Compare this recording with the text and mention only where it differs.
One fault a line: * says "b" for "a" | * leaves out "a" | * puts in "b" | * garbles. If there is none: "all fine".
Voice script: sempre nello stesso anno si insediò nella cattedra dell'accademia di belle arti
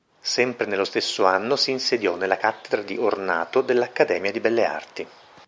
* puts in "di ornato"